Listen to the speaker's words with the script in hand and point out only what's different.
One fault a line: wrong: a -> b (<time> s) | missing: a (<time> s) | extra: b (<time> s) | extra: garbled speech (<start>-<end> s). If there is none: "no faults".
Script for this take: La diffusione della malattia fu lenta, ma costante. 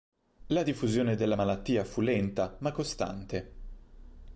no faults